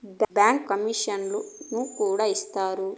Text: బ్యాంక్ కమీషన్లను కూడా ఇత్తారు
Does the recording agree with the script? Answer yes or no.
yes